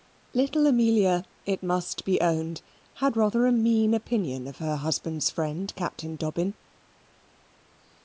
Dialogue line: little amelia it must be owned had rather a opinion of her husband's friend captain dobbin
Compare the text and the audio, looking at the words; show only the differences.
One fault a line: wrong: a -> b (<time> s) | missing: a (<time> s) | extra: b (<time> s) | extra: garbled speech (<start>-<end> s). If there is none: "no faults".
extra: mean (3.5 s)